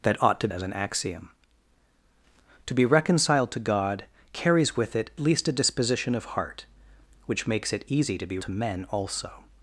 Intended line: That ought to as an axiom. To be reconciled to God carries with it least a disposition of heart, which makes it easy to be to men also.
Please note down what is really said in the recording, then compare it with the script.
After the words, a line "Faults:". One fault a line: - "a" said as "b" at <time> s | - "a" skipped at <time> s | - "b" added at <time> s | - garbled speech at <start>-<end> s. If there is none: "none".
That ought to as an axiom. To be reconciled to God carries with it least a disposition of heart, which makes it easy to be to men also.
Faults:
none